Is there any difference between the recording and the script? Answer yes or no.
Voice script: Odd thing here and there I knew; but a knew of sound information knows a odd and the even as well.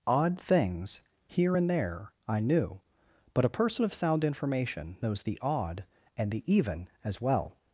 yes